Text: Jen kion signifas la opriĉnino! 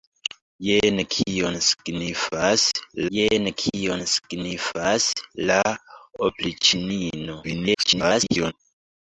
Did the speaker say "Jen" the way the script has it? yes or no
yes